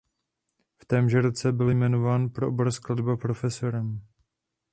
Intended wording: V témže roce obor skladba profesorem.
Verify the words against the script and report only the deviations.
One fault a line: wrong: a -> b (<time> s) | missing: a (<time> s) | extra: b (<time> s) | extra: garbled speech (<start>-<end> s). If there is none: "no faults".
extra: byl jmenován pro (1.5 s)